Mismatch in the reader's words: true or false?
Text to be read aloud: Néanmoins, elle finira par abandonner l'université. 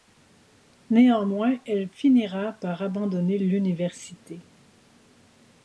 false